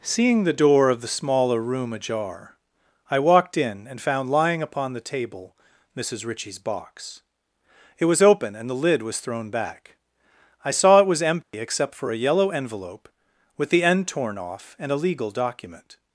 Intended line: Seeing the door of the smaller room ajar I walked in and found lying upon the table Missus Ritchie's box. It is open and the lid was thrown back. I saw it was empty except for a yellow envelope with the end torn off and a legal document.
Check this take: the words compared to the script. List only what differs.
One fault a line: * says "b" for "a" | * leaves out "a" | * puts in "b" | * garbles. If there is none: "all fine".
* says "was" for "is"